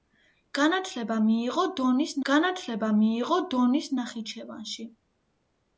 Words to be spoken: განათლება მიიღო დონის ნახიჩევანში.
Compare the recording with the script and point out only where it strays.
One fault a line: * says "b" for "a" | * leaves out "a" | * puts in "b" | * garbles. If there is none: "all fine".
* puts in "განათლება მიიღო დონის"